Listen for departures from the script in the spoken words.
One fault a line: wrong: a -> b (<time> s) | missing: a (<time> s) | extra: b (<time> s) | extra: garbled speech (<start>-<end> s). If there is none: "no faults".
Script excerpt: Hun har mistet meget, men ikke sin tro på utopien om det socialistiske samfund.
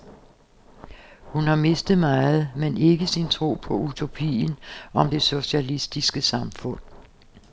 no faults